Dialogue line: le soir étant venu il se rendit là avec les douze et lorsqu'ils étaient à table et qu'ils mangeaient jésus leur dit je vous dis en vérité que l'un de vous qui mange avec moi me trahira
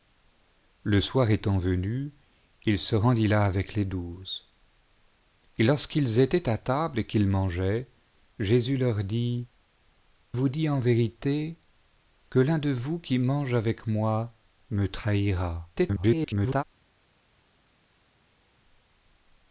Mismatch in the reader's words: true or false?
true